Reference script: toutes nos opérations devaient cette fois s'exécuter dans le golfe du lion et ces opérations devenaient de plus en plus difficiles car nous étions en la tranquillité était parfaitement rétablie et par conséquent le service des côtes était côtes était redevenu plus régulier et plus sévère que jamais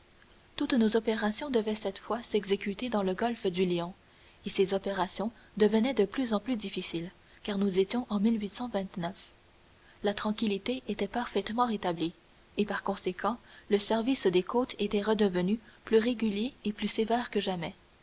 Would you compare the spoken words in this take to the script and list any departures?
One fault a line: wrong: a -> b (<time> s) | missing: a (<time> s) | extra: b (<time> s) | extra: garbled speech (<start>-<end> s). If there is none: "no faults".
missing: côtes était (15.0 s)